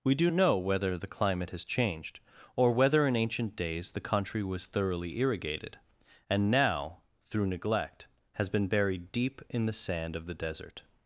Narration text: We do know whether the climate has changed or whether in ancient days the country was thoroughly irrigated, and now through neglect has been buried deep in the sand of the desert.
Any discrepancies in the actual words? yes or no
no